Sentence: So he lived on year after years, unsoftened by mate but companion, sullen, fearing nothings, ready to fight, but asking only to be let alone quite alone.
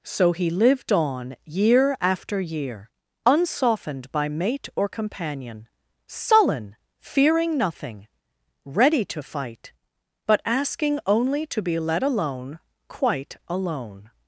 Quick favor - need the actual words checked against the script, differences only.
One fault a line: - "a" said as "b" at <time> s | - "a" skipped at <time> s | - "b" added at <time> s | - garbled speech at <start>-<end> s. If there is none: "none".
- "years" said as "year" at 2.4 s
- "but" said as "or" at 4.8 s
- "nothings" said as "nothing" at 7.6 s